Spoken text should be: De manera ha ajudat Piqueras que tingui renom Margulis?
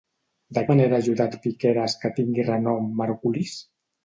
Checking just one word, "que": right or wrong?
right